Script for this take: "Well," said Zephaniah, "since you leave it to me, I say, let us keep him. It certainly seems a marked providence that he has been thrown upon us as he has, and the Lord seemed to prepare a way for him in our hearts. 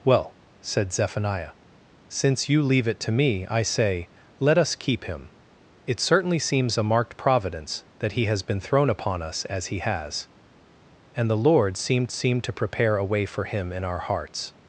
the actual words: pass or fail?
fail